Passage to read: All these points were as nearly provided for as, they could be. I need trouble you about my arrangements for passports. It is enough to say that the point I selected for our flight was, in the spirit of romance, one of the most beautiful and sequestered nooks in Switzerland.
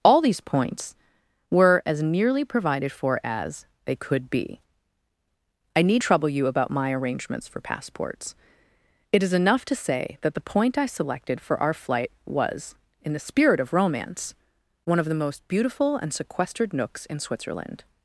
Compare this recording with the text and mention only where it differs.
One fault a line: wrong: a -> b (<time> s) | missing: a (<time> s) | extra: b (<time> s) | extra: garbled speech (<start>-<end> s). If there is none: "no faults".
no faults